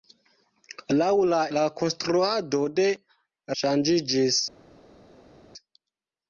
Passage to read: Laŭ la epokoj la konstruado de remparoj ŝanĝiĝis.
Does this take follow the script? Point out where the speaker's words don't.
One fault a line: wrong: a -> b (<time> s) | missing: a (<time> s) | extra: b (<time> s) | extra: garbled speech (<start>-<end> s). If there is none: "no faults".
missing: epokoj (1.4 s)
missing: remparoj (2.9 s)